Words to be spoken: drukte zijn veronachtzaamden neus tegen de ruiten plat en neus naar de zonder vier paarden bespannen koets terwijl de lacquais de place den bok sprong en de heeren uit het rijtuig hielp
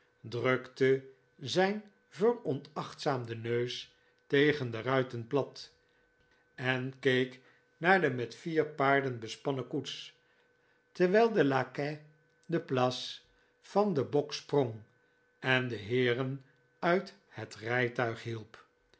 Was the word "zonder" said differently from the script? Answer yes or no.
yes